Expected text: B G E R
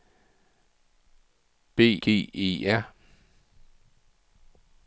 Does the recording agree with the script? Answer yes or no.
yes